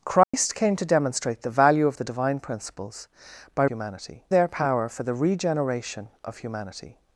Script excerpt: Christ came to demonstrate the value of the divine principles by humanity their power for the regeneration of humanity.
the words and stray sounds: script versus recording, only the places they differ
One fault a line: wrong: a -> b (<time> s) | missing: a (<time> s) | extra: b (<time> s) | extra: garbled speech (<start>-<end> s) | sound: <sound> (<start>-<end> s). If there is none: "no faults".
sound: dropout (0.2-0.3 s)